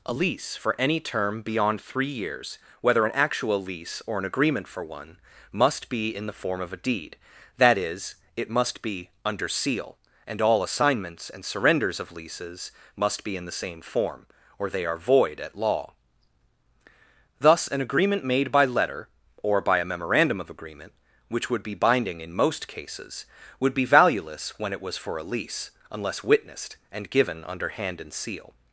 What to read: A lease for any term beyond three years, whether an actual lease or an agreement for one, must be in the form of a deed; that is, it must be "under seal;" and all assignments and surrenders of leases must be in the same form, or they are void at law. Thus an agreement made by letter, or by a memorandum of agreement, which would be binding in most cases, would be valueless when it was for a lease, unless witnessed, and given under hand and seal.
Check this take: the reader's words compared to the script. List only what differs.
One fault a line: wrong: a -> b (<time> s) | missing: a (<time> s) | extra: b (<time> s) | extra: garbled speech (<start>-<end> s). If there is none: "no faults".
no faults